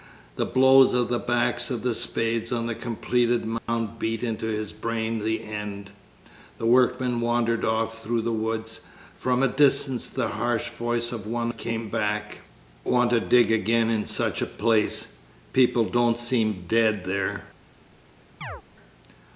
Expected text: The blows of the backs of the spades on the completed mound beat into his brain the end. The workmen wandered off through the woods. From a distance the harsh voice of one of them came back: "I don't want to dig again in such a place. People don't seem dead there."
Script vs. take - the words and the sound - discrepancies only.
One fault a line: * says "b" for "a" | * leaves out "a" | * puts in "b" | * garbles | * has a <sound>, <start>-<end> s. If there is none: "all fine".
* has a dropout, 3.6-3.7 s
* leaves out "of them"
* leaves out "I don't"
* has a chirp, 18.4-18.6 s